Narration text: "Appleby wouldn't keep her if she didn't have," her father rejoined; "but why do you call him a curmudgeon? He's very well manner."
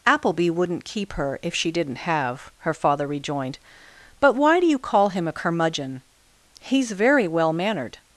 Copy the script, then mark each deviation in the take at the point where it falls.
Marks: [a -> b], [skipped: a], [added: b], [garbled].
"Appleby wouldn't keep her if she didn't have," her father rejoined; "but why do you call him a curmudgeon? He's very well [manner." -> mannered]